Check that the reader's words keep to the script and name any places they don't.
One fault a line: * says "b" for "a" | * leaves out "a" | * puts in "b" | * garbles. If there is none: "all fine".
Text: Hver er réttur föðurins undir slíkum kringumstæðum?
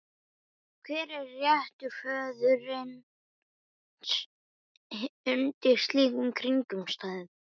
all fine